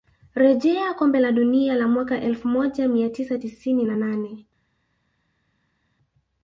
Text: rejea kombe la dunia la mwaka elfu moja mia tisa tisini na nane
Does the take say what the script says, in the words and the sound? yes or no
yes